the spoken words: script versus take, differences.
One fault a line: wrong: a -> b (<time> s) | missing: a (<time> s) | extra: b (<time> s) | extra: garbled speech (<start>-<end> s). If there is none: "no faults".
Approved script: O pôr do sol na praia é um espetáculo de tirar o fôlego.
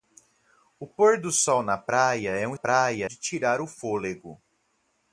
wrong: espetáculo -> praia (2.5 s)